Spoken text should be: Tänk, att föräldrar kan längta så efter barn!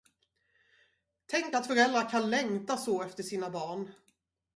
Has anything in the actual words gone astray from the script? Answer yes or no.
yes